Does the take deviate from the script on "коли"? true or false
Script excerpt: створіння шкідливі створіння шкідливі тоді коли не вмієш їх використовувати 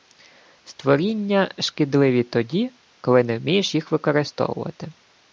false